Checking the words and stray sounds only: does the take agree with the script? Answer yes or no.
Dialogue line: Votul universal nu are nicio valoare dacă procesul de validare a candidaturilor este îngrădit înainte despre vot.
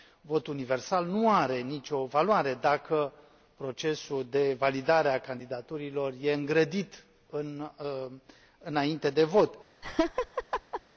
no